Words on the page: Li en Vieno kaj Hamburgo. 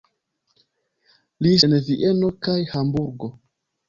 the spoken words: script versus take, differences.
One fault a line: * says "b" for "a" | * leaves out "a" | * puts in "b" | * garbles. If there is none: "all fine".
all fine